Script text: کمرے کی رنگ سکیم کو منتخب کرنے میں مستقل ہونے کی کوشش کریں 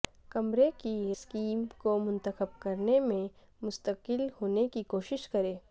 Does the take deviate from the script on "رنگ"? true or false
true